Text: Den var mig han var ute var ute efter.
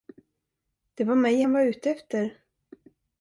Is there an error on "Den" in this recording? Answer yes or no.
yes